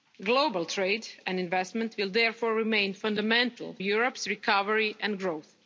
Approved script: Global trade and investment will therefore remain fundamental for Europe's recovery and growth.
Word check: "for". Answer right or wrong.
wrong